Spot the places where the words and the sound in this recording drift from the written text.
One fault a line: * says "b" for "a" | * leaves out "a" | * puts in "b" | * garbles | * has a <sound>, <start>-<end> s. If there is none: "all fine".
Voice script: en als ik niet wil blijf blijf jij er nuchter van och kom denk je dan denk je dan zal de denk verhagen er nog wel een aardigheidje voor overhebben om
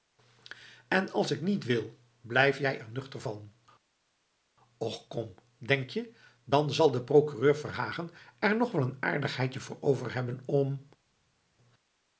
* leaves out "blijf"
* leaves out "denk je dan"
* says "procureur" for "denk"